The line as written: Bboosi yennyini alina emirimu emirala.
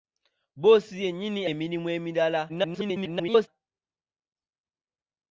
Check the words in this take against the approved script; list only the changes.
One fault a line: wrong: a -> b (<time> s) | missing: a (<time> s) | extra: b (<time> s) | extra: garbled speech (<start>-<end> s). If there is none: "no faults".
missing: alina (1.4 s)
extra: garbled speech (2.5-3.5 s)